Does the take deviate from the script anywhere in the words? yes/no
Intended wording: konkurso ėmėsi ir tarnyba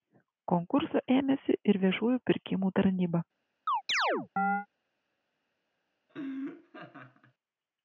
yes